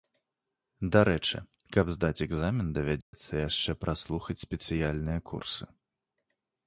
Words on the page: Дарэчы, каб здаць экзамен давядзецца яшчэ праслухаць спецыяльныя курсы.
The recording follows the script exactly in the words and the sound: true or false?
false